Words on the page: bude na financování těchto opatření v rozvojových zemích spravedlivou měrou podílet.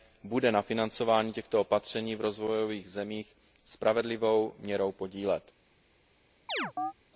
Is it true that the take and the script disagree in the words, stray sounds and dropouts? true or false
true